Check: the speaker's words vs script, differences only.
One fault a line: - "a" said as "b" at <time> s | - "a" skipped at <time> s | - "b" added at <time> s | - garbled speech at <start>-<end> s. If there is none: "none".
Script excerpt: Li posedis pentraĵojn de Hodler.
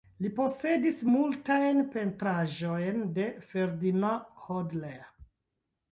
- "multajn" added at 1.2 s
- "Ferdinand" added at 3.5 s